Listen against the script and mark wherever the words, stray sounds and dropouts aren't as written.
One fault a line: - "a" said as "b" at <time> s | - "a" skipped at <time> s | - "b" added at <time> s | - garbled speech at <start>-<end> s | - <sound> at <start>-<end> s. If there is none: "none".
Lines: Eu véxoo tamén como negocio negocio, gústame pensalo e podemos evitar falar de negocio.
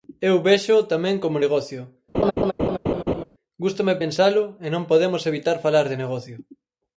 - "negocio" skipped at 1.8 s
- laugh at 2.1-3.2 s
- "non" added at 4.7 s